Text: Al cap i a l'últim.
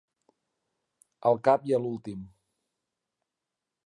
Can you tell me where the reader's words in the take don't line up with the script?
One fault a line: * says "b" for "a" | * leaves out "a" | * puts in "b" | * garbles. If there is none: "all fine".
all fine